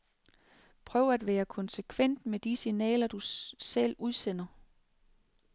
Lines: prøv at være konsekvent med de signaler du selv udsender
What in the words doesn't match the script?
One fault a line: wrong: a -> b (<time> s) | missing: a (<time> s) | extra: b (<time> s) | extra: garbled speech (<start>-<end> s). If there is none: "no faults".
no faults